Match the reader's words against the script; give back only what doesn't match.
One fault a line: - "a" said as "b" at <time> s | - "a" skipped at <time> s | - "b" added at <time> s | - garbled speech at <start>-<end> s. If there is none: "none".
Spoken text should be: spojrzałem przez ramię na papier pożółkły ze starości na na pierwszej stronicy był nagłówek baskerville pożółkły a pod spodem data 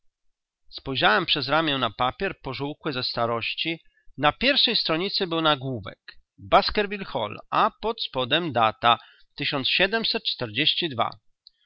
- "na" skipped at 4.3 s
- "pożółkły" said as "hall" at 7.0 s